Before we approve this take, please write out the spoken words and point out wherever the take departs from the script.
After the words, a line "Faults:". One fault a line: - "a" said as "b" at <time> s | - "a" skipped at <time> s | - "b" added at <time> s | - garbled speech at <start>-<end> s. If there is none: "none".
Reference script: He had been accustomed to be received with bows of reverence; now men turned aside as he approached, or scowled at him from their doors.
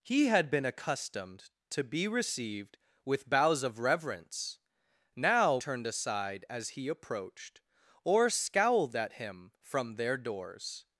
He had been accustomed to be received with bows of reverence; now turned aside as he approached, or scowled at him from their doors.
Faults:
- "men" skipped at 5.6 s